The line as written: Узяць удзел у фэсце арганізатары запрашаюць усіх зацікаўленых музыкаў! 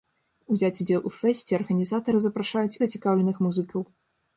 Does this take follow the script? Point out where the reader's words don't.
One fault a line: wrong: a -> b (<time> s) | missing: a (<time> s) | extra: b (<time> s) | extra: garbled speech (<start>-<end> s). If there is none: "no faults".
missing: усіх (2.8 s)